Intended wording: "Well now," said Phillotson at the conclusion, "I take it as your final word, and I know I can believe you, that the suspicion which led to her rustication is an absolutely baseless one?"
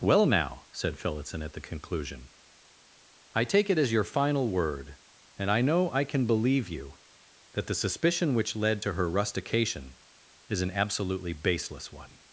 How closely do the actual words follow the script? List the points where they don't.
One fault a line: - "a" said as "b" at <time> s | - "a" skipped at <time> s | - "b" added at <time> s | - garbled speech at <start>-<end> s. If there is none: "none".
none